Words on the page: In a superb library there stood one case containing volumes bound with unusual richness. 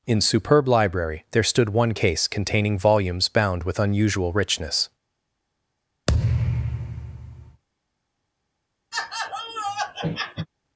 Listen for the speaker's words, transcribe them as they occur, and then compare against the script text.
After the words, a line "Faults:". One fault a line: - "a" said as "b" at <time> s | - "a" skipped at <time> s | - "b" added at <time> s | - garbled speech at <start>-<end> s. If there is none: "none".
In superb library there stood one case containing volumes bound with unusual richness.
Faults:
- "a" skipped at 0.2 s